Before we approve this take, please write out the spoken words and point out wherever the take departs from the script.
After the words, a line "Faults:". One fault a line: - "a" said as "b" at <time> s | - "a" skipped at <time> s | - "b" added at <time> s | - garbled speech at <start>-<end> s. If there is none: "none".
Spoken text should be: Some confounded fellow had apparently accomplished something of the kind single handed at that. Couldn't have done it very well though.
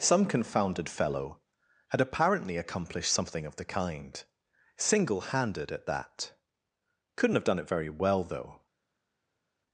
Some confounded fellow had apparently accomplished something of the kind single handed at that. Couldn't have done it very well though.
Faults:
none